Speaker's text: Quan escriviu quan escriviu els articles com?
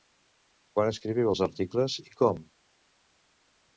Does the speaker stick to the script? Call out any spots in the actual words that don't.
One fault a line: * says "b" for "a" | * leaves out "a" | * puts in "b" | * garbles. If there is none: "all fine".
* leaves out "quan escriviu"
* puts in "i"